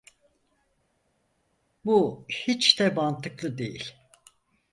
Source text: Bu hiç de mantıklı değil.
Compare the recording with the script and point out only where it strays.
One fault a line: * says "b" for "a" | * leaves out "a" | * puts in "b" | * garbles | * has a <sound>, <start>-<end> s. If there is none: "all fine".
all fine